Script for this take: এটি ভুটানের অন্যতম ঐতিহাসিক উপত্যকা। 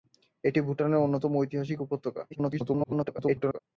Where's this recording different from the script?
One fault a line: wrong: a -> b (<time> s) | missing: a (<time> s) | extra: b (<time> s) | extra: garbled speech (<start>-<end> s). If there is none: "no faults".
extra: garbled speech (2.3-3.6 s)